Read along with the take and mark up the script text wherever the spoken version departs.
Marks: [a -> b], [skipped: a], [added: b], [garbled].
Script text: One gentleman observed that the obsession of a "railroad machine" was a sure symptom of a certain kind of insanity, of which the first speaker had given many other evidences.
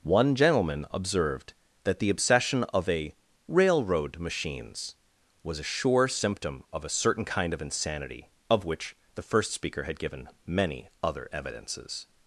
One gentleman observed that the obsession of a "railroad [machine" -> machines] was a sure symptom of a certain kind of insanity, of which the first speaker had given many other evidences.